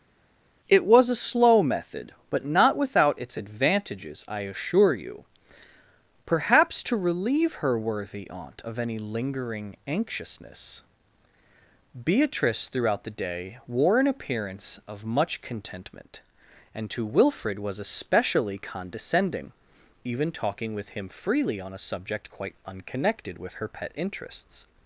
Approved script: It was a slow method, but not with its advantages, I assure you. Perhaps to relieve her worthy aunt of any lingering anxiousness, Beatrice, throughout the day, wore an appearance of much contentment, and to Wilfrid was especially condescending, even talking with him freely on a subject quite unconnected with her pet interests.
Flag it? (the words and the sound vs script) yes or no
yes